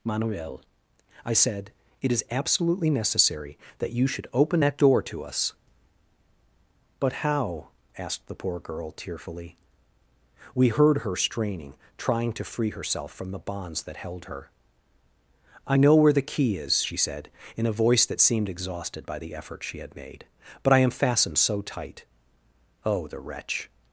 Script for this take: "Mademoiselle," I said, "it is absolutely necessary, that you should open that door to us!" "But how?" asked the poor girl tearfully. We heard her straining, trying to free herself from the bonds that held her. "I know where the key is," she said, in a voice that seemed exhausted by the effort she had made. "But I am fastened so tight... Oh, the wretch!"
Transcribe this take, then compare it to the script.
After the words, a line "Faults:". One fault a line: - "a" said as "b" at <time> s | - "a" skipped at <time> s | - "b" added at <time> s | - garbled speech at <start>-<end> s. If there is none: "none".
"Manuel," I said, "it is absolutely necessary, that you should open that door to us!" "But how?" asked the poor girl tearfully. We heard her straining, trying to free herself from the bonds that held her. "I know where the key is," she said, in a voice that seemed exhausted by the effort she had made. "But I am fastened so tight... Oh, the wretch!"
Faults:
- "Mademoiselle" said as "Manuel" at 0.0 s